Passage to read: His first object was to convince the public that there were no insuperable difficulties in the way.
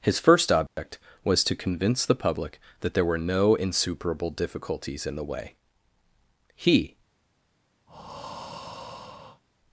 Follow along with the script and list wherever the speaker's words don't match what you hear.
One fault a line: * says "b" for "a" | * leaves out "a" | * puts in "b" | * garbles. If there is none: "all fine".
* puts in "He"